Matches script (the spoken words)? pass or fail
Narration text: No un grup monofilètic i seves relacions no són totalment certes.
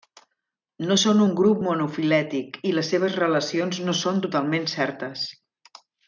fail